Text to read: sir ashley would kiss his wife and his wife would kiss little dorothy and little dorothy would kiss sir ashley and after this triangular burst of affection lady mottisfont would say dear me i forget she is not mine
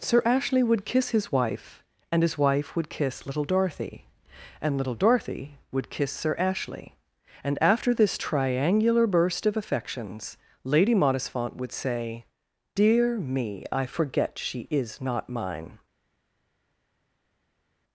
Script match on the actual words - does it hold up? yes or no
no